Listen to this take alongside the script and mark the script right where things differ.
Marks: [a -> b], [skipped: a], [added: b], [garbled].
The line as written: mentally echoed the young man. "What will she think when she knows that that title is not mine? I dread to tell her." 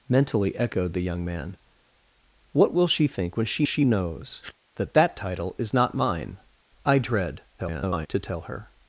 mentally echoed the young man. "What will she think when she [added: she] knows that that title is not mine? I dread [garbled] to tell her."